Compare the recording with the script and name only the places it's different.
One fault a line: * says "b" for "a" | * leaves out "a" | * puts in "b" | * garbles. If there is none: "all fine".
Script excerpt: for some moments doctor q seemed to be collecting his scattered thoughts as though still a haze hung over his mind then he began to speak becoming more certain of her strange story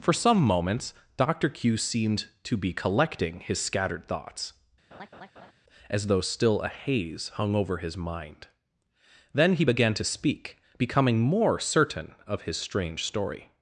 * says "his" for "her"